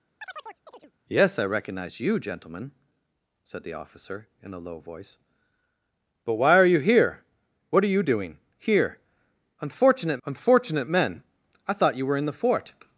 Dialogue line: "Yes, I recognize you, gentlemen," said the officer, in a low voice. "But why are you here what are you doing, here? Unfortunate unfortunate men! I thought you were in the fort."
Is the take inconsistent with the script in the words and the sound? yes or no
yes